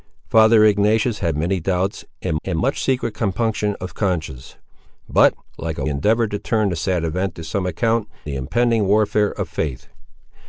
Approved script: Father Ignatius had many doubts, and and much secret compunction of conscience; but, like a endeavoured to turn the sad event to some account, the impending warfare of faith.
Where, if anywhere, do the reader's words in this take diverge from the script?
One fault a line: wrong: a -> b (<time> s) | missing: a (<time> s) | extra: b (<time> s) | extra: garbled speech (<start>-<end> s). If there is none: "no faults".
no faults